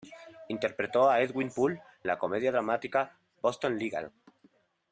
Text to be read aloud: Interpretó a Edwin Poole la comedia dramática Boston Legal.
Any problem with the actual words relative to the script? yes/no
no